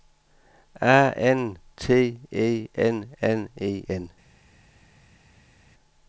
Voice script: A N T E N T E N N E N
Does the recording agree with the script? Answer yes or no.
no